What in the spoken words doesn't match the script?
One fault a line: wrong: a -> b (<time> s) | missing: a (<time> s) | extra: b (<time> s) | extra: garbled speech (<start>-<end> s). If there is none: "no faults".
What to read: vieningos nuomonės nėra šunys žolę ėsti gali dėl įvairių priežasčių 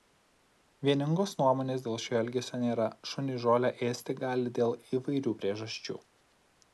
extra: dėl šio elgesio (1.9 s)